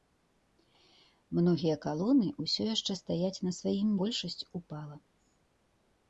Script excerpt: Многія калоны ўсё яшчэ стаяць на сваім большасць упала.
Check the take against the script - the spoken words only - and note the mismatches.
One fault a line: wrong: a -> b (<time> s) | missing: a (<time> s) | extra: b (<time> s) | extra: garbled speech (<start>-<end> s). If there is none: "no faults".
no faults